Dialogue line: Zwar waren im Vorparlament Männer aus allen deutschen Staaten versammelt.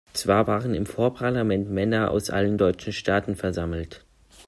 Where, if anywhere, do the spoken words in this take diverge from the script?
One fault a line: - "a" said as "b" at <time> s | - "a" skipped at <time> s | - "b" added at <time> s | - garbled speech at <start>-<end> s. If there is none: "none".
none